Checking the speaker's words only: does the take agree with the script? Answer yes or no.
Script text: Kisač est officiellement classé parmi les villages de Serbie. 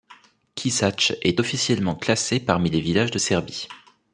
yes